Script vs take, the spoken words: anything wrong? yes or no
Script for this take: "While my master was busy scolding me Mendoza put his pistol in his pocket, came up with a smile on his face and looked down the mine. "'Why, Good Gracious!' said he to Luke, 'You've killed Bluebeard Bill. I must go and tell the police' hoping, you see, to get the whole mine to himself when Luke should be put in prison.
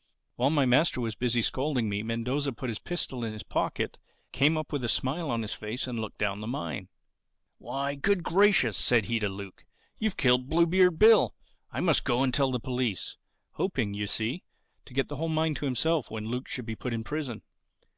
no